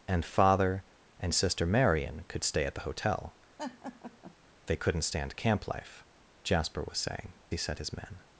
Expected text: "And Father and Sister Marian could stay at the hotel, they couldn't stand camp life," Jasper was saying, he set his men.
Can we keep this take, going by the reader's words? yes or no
yes